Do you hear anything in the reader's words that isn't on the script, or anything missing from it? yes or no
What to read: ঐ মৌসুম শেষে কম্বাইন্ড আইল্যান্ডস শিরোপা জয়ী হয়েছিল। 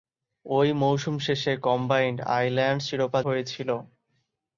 yes